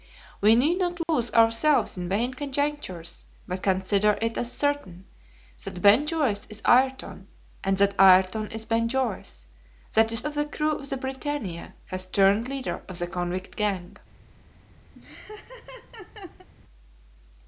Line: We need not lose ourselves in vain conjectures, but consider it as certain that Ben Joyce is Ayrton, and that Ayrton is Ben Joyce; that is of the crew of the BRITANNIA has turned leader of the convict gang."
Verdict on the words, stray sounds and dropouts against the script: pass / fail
fail